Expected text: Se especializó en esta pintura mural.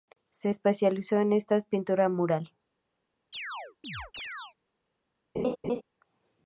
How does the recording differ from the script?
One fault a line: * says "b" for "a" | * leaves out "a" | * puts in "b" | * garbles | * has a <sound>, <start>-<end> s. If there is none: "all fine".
* has a chirp, 3.3-4.5 s
* has a laugh, 5.3-5.8 s